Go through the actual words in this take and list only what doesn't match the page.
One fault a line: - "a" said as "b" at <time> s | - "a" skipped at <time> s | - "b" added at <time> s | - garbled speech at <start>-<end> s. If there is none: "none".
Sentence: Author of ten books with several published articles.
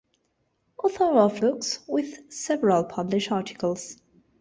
- "ten" skipped at 1.4 s